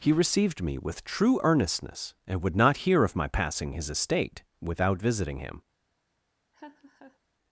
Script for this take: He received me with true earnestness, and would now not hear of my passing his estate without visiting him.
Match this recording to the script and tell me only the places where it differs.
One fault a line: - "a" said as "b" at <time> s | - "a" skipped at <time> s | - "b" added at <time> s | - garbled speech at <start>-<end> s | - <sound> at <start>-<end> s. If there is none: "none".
- "now" skipped at 2.5 s
- laugh at 6.5-7.2 s